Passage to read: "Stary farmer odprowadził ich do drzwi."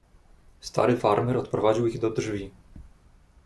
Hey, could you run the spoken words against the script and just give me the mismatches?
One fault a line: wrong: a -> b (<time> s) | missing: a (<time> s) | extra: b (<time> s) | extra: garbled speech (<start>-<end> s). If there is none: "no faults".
no faults